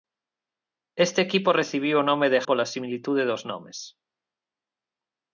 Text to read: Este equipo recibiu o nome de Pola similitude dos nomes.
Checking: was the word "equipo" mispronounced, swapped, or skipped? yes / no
no